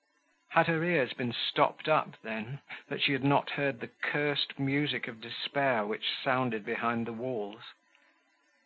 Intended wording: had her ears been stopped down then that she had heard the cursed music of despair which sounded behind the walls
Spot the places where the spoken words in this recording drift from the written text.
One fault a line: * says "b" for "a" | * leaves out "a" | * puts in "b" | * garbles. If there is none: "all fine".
* says "up" for "down"
* puts in "not"